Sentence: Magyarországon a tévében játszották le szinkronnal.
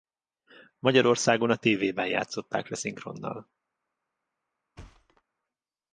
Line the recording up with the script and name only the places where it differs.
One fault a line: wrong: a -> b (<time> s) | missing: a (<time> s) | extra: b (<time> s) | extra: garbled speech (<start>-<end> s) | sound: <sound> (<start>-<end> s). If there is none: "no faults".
sound: thud (4.8-5.2 s)